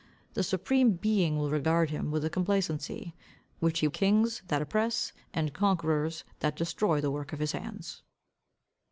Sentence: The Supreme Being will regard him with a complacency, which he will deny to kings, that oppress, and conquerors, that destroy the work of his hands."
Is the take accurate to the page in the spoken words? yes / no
no